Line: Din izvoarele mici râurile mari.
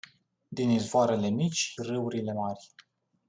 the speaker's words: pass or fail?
pass